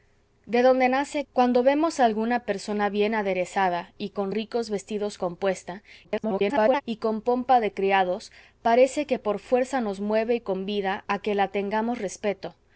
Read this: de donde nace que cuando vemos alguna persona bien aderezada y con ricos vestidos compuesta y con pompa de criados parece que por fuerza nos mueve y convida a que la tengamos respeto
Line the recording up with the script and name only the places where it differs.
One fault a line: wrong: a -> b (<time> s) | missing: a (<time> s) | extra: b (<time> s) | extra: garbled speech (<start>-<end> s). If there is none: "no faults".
missing: que (1.2 s)
extra: garbled speech (6.0-6.8 s)